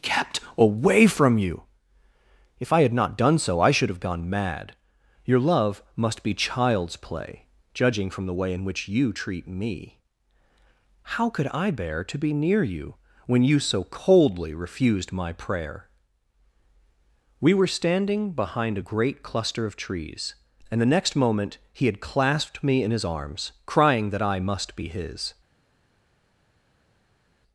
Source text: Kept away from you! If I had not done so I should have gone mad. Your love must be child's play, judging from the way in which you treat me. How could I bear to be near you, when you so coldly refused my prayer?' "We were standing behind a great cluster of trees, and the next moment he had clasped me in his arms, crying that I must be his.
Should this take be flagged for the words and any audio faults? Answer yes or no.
no